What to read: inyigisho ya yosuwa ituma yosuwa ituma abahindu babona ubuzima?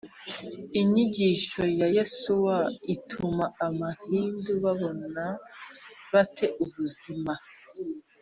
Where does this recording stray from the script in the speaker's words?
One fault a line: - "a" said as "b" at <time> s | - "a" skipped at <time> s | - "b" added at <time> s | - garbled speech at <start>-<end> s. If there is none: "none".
- "yosuwa ituma" skipped at 3.5 s
- "bate" added at 6.1 s